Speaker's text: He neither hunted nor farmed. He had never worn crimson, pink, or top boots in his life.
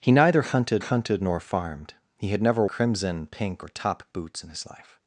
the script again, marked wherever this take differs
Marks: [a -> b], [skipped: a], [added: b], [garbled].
He neither hunted [added: hunted] nor farmed. He had never [skipped: worn] crimson, pink, or top boots in his life.